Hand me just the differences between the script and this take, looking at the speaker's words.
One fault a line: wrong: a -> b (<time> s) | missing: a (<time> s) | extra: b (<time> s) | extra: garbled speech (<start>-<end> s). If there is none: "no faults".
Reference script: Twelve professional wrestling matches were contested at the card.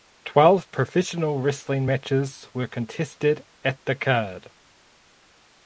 no faults